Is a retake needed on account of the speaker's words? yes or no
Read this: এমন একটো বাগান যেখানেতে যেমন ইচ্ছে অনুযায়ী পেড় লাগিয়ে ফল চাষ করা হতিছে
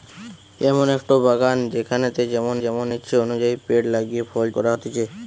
yes